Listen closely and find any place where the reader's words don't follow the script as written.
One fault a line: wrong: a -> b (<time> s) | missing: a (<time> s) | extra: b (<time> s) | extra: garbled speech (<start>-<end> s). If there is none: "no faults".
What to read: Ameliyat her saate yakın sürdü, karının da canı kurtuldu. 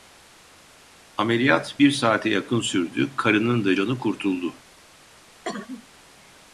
wrong: her -> bir (1.8 s)